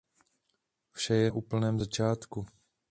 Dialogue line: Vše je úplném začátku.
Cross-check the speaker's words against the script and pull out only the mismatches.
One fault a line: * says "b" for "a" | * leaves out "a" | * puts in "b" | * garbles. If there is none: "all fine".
all fine